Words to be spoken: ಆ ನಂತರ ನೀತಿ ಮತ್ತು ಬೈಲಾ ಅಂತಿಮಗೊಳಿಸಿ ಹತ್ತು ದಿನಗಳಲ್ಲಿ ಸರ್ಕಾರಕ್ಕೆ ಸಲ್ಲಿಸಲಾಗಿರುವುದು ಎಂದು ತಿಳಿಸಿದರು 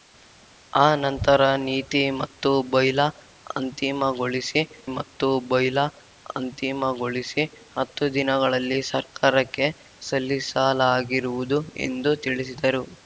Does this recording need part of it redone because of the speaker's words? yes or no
yes